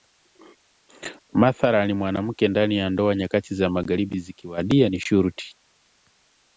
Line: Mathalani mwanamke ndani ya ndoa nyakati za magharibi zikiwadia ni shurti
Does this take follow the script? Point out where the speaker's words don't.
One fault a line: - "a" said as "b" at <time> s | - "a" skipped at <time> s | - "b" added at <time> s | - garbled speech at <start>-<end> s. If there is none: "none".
none